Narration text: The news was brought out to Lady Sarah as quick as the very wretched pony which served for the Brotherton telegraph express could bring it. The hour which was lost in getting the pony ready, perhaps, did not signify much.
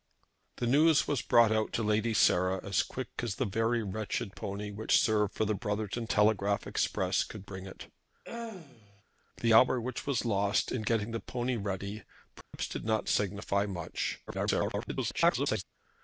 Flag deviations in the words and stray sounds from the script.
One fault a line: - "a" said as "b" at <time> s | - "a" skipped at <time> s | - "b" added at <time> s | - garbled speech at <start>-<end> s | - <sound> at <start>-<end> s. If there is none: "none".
- throat clearing at 8.2-9.0 s
- dropout at 12.4-12.5 s
- garbled speech at 14.3-15.6 s